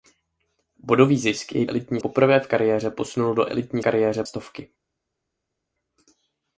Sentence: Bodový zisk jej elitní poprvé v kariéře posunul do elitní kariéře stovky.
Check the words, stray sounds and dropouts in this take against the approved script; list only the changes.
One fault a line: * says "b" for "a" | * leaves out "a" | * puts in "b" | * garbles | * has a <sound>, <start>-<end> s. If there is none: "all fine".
all fine